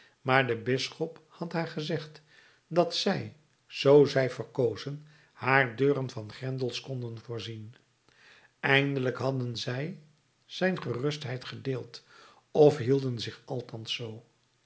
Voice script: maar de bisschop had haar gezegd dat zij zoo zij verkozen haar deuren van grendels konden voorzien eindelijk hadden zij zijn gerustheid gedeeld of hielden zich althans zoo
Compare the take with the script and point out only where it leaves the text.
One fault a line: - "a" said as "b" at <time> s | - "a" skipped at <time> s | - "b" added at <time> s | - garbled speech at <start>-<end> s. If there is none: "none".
none